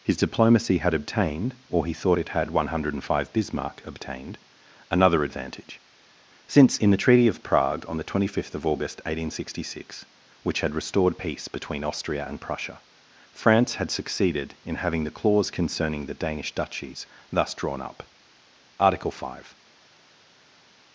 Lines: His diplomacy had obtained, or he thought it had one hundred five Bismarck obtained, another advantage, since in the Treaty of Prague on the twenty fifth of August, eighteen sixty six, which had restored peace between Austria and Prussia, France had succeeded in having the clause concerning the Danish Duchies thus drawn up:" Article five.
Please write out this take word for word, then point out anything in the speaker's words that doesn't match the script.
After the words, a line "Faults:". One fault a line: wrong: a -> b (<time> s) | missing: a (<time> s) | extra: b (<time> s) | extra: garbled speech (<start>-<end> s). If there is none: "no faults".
His diplomacy had obtained, or he thought it had one hundred five Bismarck obtained, another advantage, since in the Treaty of Prague on the twenty fifth of August, eighteen sixty six, which had restored peace between Austria and Prussia, France had succeeded in having the clause concerning the Danish Duchies thus drawn up:" Article five.
Faults:
no faults